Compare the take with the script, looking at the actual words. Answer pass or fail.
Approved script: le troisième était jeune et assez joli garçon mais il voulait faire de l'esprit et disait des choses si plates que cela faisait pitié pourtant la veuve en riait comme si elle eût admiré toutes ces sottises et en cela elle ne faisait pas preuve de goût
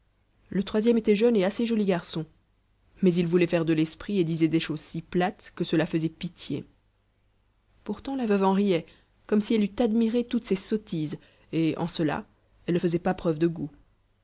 pass